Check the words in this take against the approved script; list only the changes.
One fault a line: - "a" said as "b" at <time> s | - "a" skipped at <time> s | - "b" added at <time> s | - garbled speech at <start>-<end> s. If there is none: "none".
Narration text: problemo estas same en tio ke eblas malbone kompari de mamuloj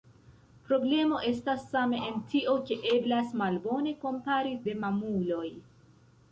none